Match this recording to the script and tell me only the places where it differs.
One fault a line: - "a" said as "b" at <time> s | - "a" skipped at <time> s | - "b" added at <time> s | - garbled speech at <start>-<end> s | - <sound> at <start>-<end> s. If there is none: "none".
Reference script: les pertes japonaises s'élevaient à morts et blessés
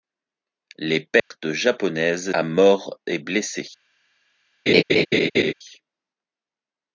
- dropout at 1.2-1.3 s
- "s'élevaient" skipped at 2.3 s
- laugh at 4.7-5.5 s